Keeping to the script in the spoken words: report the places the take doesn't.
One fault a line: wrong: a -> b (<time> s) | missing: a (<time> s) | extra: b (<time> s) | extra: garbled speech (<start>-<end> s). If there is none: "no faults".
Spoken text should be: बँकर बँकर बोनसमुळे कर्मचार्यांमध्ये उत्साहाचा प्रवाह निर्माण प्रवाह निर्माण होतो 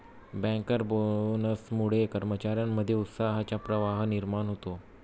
missing: बँकर (0.8 s)
missing: प्रवाह निर्माण (4.5 s)